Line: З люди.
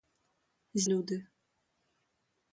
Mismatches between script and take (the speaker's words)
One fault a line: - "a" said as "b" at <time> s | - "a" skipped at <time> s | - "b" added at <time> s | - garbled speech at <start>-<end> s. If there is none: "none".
none